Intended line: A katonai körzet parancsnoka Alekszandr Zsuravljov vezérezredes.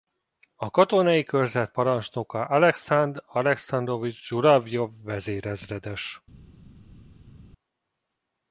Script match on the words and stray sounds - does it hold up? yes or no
no